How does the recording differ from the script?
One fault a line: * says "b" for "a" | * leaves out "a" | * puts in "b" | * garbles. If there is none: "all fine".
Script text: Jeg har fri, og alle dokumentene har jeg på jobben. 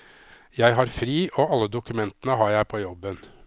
all fine